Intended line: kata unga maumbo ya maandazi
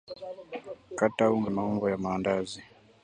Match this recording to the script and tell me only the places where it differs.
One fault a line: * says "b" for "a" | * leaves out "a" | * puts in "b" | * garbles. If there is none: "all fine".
all fine